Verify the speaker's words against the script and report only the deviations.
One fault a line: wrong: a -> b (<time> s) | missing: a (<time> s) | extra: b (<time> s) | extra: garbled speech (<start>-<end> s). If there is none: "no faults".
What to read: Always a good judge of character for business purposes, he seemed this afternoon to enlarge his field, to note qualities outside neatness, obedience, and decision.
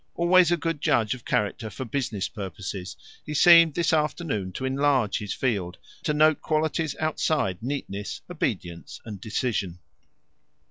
no faults